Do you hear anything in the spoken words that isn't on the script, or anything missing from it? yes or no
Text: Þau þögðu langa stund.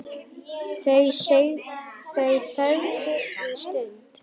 yes